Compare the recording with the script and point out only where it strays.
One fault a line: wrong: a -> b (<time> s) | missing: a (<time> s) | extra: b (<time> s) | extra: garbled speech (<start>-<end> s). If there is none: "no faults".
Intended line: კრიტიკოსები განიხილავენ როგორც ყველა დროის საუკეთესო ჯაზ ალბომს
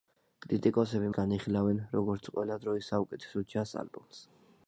no faults